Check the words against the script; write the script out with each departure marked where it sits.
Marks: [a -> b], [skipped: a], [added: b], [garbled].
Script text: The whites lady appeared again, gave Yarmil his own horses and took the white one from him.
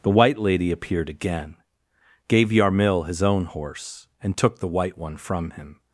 The [whites -> white] lady appeared again, gave Yarmil his own [horses -> horse] and took the white one from him.